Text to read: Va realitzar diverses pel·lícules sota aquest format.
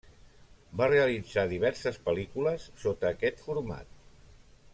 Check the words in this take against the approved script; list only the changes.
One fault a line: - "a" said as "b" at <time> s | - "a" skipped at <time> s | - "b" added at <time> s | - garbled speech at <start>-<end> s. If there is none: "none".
none